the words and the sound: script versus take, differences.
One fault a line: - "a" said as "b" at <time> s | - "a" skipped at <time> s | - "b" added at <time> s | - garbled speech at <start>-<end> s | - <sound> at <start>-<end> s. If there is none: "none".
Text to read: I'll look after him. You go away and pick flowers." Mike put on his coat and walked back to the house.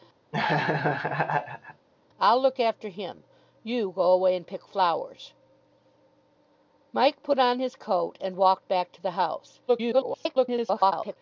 - laugh at 0.3-1.9 s
- garbled speech at 9.7-11.2 s